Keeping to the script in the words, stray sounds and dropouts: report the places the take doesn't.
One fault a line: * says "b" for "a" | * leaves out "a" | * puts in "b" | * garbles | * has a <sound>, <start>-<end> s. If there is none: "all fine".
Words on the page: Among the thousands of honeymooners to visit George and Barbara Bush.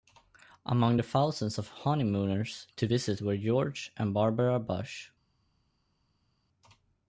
* puts in "were"